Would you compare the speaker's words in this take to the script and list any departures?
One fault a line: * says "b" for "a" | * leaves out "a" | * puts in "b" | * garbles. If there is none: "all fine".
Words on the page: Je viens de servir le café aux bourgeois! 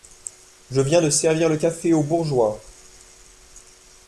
all fine